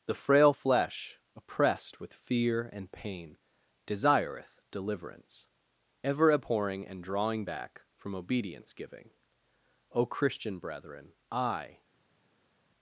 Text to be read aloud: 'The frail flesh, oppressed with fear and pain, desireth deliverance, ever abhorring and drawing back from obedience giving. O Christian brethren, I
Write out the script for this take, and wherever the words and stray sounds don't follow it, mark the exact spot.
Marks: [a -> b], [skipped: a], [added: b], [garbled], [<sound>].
'The frail flesh, oppressed with fear and pain, desireth deliverance, ever abhorring and drawing back from obedience giving. O Christian brethren, I